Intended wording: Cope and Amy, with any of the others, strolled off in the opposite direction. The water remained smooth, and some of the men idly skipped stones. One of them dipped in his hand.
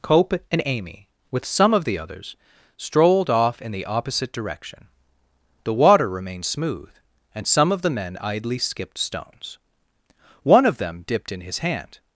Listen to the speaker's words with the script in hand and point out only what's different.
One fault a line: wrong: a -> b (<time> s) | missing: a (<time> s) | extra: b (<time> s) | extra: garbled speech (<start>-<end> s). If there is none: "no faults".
wrong: any -> some (1.4 s)